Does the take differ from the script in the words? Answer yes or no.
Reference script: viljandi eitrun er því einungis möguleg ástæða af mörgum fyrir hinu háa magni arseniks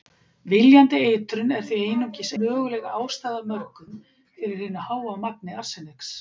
no